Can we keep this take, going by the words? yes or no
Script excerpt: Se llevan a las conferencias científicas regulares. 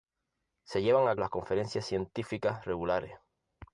yes